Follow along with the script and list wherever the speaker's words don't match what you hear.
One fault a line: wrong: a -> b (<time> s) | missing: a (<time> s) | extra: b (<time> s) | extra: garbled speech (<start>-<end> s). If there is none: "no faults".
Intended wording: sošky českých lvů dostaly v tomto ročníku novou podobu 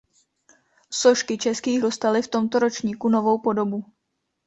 missing: lvů (1.8 s)